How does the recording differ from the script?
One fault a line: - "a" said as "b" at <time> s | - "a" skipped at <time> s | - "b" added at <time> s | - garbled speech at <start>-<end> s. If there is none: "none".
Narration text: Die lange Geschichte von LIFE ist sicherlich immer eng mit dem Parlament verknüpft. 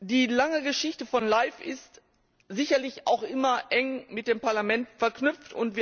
- "auch" added at 3.0 s